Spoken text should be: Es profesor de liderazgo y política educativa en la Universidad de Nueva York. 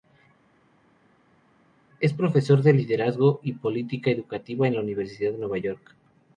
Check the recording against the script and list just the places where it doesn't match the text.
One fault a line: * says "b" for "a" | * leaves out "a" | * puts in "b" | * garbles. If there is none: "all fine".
all fine